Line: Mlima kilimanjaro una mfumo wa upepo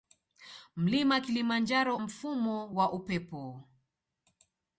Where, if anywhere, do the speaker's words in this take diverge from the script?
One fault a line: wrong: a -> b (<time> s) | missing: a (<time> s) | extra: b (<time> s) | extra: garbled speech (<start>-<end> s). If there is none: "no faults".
missing: una (2.0 s)